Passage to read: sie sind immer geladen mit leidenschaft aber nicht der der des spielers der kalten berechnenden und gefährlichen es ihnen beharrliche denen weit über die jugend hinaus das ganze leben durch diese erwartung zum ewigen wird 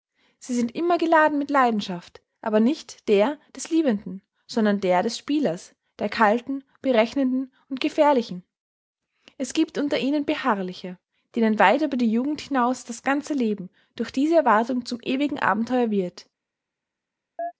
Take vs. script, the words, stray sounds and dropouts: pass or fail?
fail